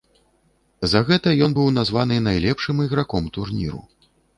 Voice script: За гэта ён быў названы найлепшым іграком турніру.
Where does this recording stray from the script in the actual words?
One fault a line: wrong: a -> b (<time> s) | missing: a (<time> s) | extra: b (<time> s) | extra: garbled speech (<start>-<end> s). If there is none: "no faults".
no faults